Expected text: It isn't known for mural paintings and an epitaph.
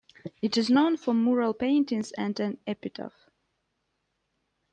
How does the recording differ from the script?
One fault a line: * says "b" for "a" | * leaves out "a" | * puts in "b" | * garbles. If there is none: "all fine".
* says "is" for "isn't"